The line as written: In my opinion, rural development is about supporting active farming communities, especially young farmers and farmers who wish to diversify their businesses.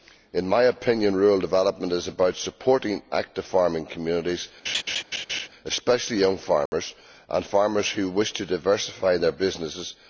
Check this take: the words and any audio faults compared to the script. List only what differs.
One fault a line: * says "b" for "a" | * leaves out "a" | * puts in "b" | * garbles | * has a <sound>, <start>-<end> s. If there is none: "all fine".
* has a laugh, 4.6-5.5 s
* has a dropout, 6.7-6.7 s